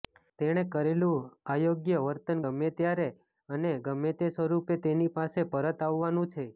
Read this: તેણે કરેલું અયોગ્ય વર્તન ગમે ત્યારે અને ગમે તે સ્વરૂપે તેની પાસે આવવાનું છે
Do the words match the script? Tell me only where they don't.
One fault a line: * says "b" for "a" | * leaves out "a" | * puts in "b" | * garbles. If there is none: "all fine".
* puts in "પરત"